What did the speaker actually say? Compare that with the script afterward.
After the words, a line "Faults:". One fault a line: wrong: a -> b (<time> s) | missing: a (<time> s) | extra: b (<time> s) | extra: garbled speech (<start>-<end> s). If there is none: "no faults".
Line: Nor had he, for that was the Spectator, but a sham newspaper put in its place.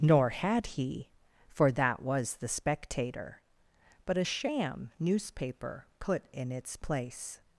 Nor had he, for that was the Spectator, but a sham newspaper put in its place.
Faults:
no faults